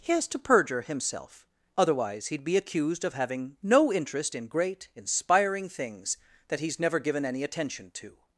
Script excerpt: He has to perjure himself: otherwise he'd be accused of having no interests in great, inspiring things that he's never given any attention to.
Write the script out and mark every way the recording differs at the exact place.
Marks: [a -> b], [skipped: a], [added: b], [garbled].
He has to perjure himself: otherwise he'd be accused of having no [interests -> interest] in great, inspiring things that he's never given any attention to.